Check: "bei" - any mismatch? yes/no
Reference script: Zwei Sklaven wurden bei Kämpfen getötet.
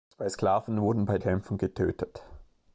no